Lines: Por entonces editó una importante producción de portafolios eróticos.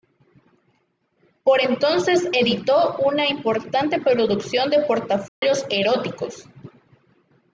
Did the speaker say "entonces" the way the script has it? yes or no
yes